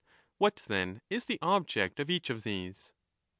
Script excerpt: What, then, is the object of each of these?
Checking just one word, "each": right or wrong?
right